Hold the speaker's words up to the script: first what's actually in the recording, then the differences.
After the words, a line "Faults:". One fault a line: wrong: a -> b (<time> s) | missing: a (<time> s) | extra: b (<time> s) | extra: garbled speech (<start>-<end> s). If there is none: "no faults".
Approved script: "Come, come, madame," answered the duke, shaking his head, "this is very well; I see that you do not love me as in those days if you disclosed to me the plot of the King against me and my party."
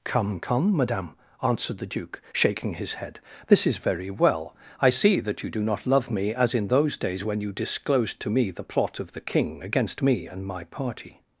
"Come, come, madame," answered the duke, shaking his head, "this is very well; I see that you do not love me as in those days when you disclosed to me the plot of the King against me and my party."
Faults:
wrong: if -> when (7.2 s)